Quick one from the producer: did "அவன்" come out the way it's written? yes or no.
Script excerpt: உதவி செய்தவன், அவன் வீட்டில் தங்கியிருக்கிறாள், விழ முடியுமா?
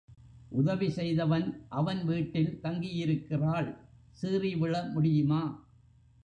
yes